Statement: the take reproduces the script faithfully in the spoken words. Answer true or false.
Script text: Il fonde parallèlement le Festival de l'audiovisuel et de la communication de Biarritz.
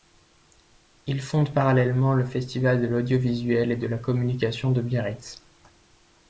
true